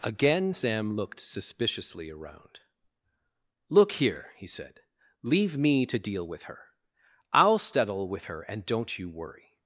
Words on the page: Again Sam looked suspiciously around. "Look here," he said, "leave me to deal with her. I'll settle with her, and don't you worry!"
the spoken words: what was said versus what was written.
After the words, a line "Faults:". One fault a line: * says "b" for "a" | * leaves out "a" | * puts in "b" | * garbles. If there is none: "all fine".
Again Sam looked suspiciously around. "Look here," he said, "leave me to deal with her. I'll settle with her, and don't you worry!"
Faults:
all fine